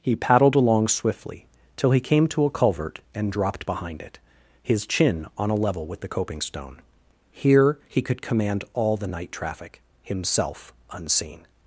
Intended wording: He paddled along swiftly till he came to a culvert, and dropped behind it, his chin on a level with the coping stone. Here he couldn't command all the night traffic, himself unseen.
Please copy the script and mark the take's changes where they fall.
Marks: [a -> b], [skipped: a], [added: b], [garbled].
He paddled along swiftly till he came to a culvert, and dropped behind it, his chin on a level with the coping stone. Here he [couldn't -> could] command all the night traffic, himself unseen.